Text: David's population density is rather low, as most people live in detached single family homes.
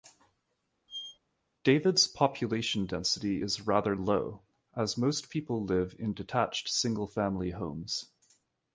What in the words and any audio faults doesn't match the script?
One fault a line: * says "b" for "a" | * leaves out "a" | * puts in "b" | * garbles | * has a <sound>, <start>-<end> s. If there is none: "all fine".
* has a squeak, 0.9-1.2 s